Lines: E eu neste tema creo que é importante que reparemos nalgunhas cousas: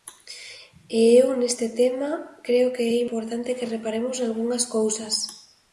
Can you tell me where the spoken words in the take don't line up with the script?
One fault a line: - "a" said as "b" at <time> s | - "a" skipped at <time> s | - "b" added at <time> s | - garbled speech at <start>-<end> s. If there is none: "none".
none